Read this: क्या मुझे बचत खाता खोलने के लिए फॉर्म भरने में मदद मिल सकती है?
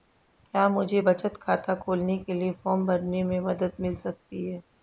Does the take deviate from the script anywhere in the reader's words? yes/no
no